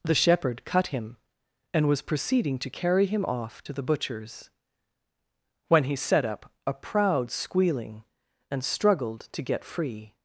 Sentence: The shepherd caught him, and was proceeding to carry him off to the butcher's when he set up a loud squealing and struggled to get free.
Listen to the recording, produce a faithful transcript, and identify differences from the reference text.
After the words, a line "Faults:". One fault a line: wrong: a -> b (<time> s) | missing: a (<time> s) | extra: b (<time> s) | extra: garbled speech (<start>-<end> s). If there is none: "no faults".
The shepherd cut him, and was proceeding to carry him off to the butcher's when he set up a proud squealing and struggled to get free.
Faults:
wrong: caught -> cut (0.7 s)
wrong: loud -> proud (6.7 s)